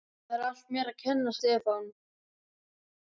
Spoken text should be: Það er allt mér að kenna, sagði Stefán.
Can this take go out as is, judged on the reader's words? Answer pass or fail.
fail